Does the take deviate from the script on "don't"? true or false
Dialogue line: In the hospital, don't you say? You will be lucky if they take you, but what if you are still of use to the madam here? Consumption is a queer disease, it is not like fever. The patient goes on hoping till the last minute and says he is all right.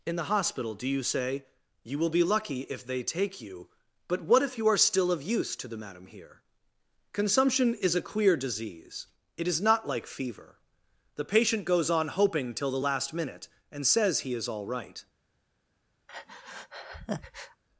true